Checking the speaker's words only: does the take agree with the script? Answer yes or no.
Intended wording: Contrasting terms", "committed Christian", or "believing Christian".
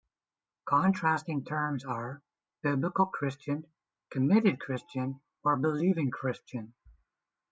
no